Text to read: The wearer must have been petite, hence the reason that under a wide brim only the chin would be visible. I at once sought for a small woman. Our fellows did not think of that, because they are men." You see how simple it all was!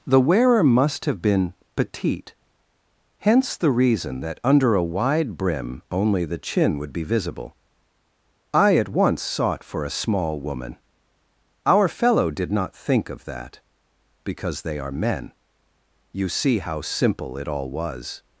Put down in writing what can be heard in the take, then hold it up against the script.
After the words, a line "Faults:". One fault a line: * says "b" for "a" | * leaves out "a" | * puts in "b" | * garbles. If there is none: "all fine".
The wearer must have been petite, hence the reason that under a wide brim only the chin would be visible. I at once sought for a small woman. Our fellow did not think of that, because they are men." You see how simple it all was!
Faults:
* says "fellow" for "fellows"